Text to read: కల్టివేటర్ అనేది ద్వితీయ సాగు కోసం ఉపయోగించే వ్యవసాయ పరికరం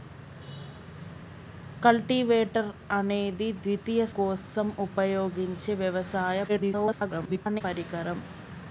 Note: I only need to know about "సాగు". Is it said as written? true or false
false